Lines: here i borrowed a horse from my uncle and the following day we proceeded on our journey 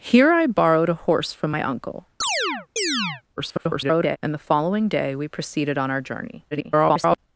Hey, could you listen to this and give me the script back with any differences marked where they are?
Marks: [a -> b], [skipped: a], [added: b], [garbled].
here i borrowed a horse from my uncle [garbled] and the following day we proceeded on our journey [garbled]